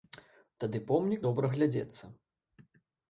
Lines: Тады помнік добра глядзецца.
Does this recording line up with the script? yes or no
yes